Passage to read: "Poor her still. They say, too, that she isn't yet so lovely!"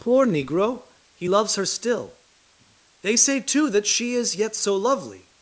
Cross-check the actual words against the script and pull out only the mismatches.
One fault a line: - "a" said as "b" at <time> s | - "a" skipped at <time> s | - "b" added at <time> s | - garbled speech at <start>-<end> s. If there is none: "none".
- "negro he loves" added at 0.2 s
- "isn't" said as "is" at 4.1 s